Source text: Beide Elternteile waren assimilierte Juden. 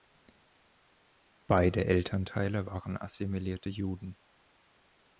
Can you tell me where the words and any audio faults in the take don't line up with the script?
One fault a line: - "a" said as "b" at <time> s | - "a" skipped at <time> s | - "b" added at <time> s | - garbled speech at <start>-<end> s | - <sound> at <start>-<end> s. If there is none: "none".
none